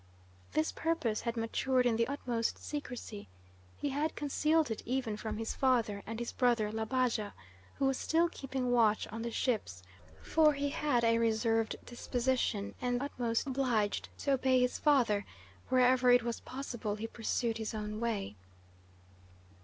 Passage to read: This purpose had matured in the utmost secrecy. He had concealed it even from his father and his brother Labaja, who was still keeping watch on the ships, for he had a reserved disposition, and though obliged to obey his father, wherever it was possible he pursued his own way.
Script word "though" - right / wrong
wrong